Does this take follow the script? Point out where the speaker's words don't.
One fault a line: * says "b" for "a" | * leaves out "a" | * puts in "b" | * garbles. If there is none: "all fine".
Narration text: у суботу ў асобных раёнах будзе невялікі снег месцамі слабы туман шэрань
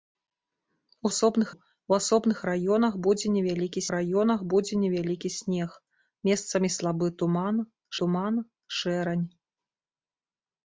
* says "асобных" for "суботу"
* puts in "раёнах будзе невялікі"
* puts in "туман"